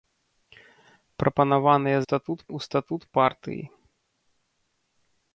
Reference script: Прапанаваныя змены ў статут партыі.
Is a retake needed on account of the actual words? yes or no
yes